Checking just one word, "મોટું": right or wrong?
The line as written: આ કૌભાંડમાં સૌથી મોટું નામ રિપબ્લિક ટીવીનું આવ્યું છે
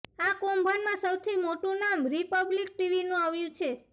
right